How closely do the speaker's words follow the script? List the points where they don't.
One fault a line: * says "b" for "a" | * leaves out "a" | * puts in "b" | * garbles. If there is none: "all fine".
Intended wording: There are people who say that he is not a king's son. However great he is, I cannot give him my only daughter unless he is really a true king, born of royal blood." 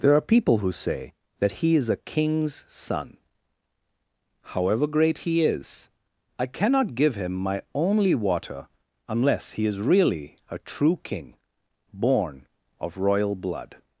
* leaves out "not"
* says "water" for "daughter"